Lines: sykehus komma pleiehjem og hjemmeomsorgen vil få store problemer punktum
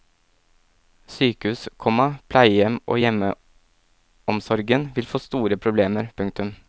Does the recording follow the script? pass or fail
pass